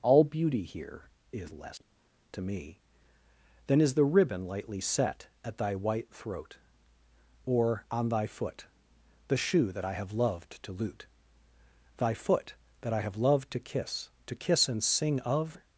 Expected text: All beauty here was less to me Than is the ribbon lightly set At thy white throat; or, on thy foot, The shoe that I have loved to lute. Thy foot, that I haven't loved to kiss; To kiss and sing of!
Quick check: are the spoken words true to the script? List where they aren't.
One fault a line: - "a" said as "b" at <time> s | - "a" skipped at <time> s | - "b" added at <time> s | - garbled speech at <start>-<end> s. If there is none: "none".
- "was" said as "is" at 1.3 s
- "haven't" said as "have" at 13.0 s